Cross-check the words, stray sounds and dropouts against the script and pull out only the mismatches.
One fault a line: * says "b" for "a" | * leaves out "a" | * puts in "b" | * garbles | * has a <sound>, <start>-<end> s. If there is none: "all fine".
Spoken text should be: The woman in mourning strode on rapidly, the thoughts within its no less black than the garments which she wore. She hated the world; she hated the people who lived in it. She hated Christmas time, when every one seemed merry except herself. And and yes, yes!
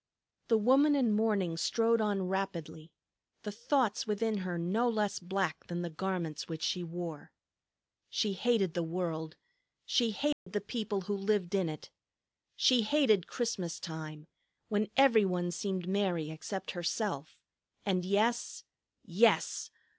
* says "her" for "its"
* has a dropout, 10.3-10.5 s
* leaves out "and"